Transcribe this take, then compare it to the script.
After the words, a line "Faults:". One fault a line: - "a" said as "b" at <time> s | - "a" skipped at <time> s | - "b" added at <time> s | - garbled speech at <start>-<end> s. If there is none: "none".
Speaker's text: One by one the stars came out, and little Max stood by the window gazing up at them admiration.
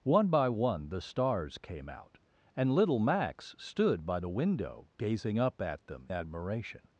One by one the stars came out, and little Max stood by the window gazing up at them admiration.
Faults:
none